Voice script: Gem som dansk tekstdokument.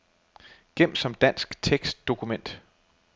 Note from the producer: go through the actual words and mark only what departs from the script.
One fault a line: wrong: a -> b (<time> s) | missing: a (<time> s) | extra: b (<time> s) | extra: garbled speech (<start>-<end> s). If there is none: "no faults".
no faults